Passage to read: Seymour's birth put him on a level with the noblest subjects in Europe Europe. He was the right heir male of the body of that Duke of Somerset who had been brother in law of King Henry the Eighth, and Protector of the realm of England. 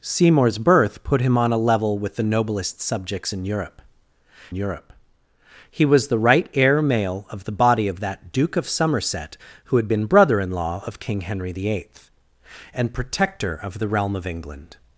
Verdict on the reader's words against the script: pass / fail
pass